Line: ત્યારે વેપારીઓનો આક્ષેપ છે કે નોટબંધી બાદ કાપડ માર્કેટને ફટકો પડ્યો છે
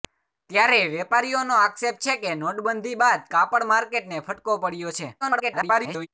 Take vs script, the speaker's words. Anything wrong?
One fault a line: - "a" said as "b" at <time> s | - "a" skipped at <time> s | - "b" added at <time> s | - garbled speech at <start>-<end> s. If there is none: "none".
- garbled speech at 5.2-6.1 s